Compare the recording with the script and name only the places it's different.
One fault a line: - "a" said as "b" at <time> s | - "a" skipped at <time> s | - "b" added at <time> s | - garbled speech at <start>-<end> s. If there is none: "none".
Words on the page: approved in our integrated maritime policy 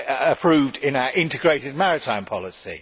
none